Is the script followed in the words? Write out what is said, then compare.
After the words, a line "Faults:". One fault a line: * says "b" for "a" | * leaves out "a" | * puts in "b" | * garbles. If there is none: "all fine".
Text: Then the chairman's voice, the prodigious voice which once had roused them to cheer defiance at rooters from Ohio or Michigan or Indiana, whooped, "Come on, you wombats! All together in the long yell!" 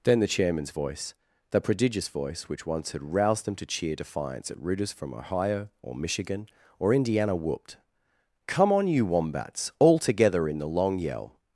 Then the chairman's voice, the prodigious voice which once had roused them to cheer defiance at rooters from Ohio or Michigan or Indiana, whooped, "Come on, you wombats! All together in the long yell!"
Faults:
all fine